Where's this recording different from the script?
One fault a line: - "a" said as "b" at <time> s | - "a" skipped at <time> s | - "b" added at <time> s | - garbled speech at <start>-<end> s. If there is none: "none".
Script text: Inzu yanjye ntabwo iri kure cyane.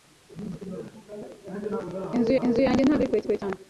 - "inzu" added at 2.5 s
- "kure" added at 3.3 s